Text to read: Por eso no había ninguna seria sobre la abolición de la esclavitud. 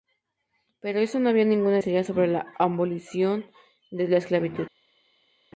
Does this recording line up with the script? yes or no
yes